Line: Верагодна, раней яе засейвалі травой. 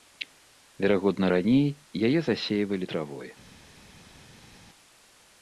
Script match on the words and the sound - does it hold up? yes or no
yes